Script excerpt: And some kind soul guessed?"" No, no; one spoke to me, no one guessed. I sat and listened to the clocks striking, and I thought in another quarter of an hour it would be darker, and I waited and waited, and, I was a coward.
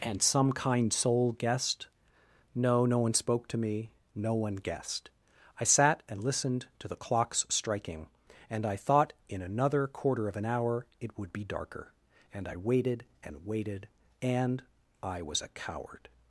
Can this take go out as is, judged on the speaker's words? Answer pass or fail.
pass